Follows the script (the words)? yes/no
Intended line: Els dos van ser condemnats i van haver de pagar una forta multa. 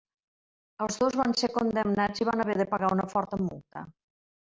yes